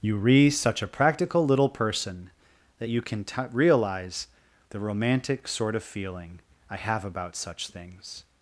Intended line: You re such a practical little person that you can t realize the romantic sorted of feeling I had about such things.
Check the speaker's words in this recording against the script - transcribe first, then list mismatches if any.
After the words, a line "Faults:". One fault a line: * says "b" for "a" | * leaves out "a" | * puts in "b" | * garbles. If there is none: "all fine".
You re such a practical little person that you can t realize the romantic sort of feeling I have about such things.
Faults:
* says "sort" for "sorted"
* says "have" for "had"